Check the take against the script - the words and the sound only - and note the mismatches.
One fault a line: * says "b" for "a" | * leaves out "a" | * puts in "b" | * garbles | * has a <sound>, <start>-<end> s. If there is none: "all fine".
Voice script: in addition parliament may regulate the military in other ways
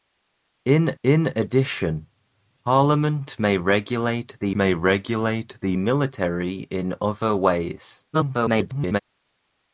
* puts in "in"
* puts in "may regulate the"
* garbles